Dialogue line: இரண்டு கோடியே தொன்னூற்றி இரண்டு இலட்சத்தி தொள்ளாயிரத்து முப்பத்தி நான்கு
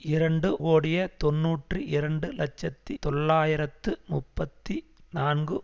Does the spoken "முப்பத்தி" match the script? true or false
true